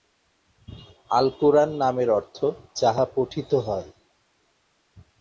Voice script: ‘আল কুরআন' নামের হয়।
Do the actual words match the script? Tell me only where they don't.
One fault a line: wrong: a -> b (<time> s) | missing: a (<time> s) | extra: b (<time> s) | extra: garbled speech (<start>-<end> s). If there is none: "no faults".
extra: অর্থ যাহা পঠিত (2.1 s)